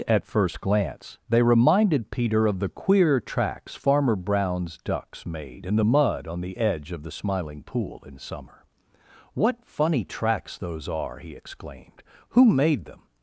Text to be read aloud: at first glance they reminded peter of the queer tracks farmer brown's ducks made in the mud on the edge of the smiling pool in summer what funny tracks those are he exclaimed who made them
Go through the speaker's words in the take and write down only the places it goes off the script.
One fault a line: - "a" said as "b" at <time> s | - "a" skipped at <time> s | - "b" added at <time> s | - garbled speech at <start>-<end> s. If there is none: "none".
none